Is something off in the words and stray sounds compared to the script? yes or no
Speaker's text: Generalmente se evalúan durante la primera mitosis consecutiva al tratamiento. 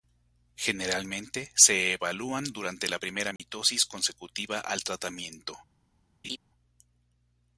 yes